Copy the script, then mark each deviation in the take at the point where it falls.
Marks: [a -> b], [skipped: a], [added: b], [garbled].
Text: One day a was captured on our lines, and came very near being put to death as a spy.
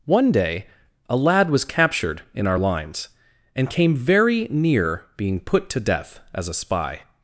One day a [added: lad] was captured [on -> in] our lines, and came very near being put to death as a spy.